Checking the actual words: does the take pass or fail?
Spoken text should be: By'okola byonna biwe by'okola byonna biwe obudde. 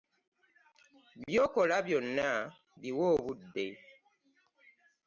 fail